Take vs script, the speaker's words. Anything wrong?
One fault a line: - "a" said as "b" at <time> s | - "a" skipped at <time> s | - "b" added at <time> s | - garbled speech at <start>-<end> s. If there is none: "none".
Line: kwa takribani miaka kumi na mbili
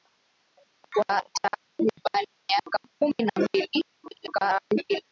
- garbled speech at 3.9-5.1 s